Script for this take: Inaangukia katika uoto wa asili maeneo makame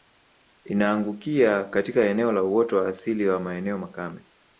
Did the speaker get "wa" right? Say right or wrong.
right